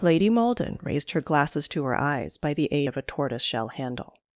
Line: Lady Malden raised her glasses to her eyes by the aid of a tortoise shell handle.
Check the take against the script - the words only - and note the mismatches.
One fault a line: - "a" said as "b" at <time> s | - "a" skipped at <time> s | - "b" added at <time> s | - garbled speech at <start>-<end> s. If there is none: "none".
none